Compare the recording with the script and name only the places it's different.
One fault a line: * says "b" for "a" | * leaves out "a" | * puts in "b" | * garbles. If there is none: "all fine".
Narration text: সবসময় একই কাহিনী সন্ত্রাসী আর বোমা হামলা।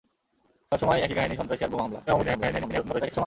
* garbles